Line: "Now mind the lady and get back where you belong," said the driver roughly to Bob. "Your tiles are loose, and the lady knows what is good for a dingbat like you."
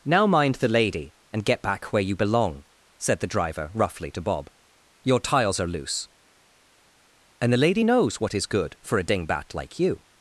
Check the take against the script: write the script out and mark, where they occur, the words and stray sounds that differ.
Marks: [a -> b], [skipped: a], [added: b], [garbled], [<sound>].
"Now mind the lady and get back where you belong," said the driver roughly to Bob. "Your tiles are loose, and the lady knows what is good for a dingbat like you."